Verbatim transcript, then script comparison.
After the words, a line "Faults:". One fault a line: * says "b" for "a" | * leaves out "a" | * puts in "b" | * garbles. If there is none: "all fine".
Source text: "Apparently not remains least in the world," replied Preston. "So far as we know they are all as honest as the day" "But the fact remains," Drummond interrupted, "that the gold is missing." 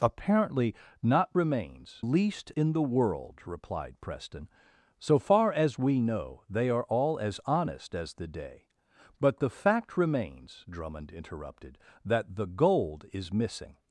"Apparently not remains least in the world," replied Preston. "So far as we know they are all as honest as the day" "But the fact remains," Drummond interrupted, "that the gold is missing."
Faults:
all fine